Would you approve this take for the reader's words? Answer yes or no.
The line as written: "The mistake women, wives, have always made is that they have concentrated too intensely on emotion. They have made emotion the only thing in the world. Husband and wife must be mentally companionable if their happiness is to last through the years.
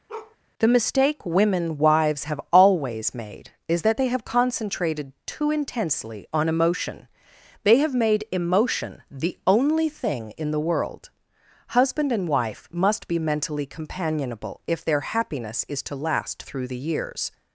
yes